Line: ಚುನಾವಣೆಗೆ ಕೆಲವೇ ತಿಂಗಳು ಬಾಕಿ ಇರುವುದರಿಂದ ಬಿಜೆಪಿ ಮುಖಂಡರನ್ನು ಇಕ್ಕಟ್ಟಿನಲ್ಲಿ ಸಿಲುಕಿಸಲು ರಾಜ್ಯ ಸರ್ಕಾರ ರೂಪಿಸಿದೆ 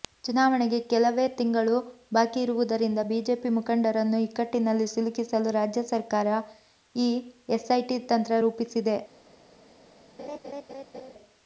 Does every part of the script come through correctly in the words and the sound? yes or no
no